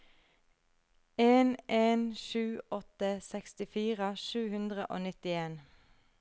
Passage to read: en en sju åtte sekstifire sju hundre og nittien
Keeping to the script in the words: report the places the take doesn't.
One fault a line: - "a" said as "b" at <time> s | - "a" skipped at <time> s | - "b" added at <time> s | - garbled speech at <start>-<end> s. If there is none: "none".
none